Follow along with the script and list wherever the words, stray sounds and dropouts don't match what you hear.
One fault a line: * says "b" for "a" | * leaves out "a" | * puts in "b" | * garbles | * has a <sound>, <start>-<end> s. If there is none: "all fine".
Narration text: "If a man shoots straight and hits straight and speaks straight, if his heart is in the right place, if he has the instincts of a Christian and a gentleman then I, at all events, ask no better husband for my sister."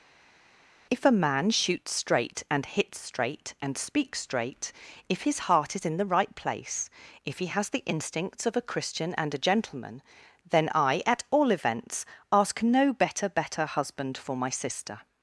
* puts in "better"